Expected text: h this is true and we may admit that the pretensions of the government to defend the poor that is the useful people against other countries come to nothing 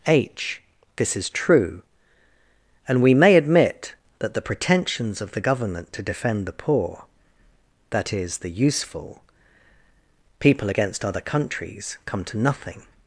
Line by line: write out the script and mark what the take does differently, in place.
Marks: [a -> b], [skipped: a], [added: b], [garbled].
h this is true and we may admit that the pretensions of the government to defend the poor that is the useful people against other countries come to nothing